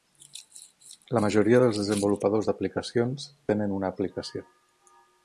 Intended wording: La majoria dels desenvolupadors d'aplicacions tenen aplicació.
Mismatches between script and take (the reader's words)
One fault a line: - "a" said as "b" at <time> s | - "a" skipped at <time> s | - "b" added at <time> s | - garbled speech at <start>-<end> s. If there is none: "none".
- "una" added at 3.8 s